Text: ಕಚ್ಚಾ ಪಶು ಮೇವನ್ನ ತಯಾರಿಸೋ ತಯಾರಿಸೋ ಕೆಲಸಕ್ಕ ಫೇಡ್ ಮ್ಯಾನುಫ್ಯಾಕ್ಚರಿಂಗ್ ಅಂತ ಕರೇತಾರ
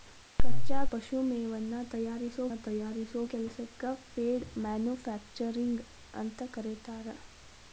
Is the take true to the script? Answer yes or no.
yes